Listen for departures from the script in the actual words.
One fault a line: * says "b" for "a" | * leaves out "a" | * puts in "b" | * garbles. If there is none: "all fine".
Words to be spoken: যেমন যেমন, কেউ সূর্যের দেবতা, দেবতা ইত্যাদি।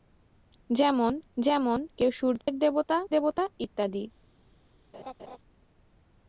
all fine